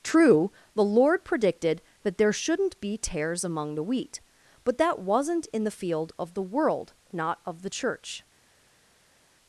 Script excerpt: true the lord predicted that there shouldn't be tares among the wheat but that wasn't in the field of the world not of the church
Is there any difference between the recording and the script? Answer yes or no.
no